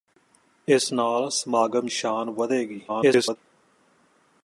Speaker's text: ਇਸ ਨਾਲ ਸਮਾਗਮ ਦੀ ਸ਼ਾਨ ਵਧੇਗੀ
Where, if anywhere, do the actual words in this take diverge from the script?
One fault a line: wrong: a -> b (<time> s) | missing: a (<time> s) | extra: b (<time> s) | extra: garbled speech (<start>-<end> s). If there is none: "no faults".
missing: ਦੀ (1.9 s)
extra: garbled speech (2.9-3.4 s)